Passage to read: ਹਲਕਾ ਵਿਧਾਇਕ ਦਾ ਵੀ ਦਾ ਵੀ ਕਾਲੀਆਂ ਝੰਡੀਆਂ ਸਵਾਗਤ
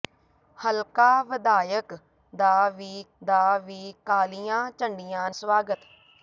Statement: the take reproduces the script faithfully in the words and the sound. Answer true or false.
true